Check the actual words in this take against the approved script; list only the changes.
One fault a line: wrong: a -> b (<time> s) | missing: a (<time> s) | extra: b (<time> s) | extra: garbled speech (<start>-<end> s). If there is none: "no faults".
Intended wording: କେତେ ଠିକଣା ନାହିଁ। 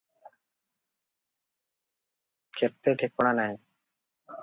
no faults